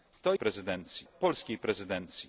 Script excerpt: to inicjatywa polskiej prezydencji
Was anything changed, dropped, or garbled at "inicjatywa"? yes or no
yes